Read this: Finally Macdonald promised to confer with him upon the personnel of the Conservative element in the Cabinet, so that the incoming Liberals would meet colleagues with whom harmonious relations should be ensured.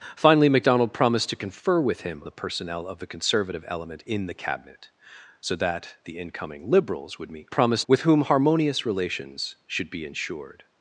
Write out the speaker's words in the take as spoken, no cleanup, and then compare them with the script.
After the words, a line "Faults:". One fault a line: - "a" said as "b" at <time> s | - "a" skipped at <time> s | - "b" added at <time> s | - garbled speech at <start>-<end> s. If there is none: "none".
Finally Macdonald promised to confer with him the personnel of the Conservative element in the Cabinet, so that the incoming Liberals would meet promised with whom harmonious relations should be ensured.
Faults:
- "upon" skipped at 2.2 s
- "colleagues" said as "promised" at 7.5 s